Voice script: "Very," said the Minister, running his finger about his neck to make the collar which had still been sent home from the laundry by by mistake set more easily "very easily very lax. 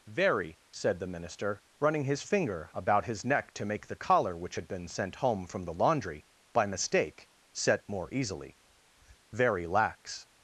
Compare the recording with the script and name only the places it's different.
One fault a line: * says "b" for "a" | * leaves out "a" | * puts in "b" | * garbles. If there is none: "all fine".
* leaves out "still"
* leaves out "by"
* leaves out "easily very"